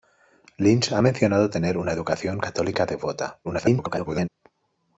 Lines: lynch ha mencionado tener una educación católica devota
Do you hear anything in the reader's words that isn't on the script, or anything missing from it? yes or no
yes